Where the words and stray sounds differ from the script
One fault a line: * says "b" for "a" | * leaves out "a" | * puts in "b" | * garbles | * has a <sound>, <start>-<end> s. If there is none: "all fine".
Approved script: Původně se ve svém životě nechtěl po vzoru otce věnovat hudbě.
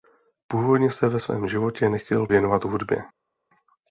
* leaves out "po vzoru otce"